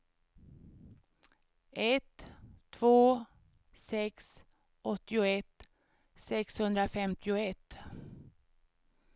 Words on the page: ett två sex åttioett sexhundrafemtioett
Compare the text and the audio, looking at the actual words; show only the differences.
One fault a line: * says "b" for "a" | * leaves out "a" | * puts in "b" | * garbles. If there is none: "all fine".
all fine